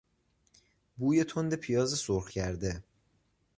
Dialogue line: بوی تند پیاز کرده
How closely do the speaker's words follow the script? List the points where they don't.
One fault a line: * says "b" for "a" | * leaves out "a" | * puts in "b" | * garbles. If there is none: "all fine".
* puts in "سرخ"